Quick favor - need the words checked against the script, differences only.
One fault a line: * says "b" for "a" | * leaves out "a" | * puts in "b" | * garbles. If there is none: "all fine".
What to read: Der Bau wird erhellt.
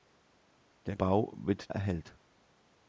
all fine